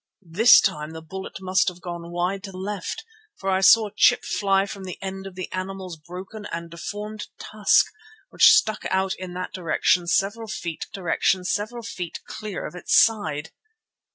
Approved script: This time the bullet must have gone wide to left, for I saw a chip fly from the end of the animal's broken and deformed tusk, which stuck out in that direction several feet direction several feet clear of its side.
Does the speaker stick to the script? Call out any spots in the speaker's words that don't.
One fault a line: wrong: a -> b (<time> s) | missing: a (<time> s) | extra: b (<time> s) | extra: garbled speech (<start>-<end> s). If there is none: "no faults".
no faults